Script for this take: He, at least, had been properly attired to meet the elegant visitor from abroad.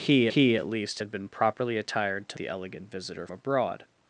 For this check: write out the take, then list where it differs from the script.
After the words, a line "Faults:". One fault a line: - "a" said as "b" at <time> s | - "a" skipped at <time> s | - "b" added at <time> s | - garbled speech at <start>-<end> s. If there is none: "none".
He he, at least, had been properly attired to the elegant visitor abroad.
Faults:
- "he" added at 0.3 s
- "meet" skipped at 2.4 s
- "from" skipped at 3.3 s